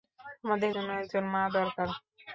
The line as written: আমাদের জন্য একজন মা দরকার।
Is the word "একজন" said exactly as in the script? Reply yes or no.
yes